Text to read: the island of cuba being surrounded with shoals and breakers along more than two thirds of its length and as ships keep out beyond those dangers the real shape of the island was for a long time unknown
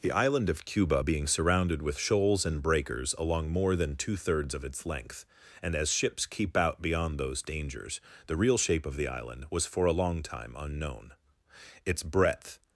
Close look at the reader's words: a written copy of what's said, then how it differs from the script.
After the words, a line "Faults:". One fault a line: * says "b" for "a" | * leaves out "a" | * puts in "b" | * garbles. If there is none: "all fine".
the island of cuba being surrounded with shoals and breakers along more than two thirds of its length and as ships keep out beyond those dangers the real shape of the island was for a long time unknown its breadth
Faults:
* puts in "its breadth"